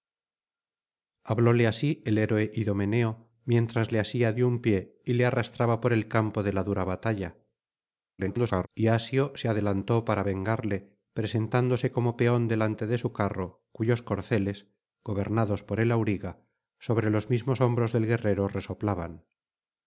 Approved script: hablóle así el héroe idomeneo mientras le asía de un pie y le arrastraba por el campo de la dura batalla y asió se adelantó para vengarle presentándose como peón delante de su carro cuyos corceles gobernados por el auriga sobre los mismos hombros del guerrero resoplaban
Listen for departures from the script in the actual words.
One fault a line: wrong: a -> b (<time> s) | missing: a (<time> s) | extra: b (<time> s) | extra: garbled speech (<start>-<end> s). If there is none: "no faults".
extra: garbled speech (8.2-8.7 s)